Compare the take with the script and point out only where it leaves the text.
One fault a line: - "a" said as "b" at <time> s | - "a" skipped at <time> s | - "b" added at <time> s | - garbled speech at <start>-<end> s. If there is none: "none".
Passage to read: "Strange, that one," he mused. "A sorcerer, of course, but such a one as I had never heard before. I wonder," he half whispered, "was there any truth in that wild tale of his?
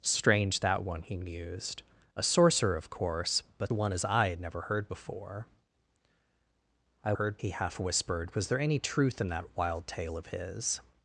- "such" skipped at 3.7 s
- "wonder" said as "heard" at 7.1 s